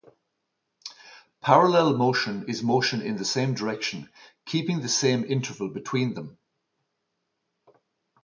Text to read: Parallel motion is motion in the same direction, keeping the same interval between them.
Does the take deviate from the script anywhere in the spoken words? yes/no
no